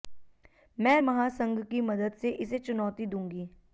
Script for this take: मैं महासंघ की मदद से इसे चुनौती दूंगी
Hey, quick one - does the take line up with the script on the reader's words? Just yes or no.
yes